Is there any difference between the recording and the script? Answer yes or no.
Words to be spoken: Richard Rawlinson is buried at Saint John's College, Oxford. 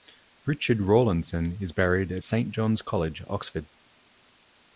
no